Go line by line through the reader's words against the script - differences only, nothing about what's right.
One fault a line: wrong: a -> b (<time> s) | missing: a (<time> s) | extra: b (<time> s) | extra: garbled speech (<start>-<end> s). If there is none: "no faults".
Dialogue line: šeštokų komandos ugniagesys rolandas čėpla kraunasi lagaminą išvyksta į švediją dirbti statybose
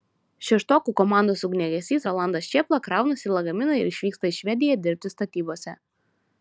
extra: ir (3.8 s)